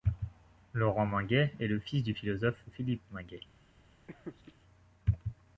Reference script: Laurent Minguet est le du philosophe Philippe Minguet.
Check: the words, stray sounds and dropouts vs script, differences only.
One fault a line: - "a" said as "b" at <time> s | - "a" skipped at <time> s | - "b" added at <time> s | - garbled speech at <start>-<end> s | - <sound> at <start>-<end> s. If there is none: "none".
- "fils" added at 1.8 s
- laugh at 4.1-4.5 s